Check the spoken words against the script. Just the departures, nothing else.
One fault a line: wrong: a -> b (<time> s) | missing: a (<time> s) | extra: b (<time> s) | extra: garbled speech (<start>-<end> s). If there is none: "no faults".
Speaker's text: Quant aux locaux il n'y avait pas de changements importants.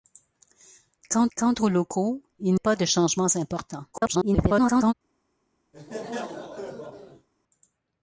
extra: quant (1.4 s)
missing: n'y avait (2.5 s)
extra: garbled speech (3.9-4.9 s)